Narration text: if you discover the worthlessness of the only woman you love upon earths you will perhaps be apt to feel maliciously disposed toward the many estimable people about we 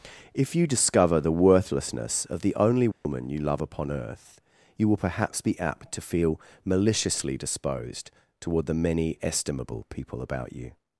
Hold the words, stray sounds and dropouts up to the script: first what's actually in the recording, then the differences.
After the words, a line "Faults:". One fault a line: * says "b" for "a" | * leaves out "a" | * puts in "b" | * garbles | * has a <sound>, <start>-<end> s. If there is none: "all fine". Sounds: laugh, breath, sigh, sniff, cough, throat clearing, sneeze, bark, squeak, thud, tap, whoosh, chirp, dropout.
if you discover the worthlessness of the only woman you love upon earth you will perhaps be apt to feel maliciously disposed toward the many estimable people about you
Faults:
* has a dropout, 2.9-3.0 s
* says "earth" for "earths"
* says "you" for "we"